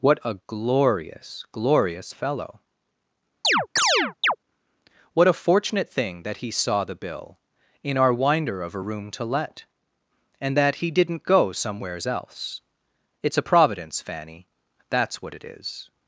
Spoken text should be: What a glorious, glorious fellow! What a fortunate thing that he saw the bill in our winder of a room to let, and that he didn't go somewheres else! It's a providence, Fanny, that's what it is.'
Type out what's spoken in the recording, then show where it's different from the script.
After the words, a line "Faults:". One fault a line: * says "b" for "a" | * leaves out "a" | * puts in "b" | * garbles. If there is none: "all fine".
What a glorious, glorious fellow! What a fortunate thing that he saw the bill in our winder of a room to let, and that he didn't go somewheres else! It's a providence, Fanny, that's what it is.'
Faults:
all fine